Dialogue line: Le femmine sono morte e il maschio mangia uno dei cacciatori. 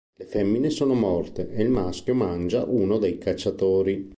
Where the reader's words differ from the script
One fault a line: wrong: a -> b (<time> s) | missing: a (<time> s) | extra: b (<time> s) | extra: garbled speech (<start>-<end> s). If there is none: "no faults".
no faults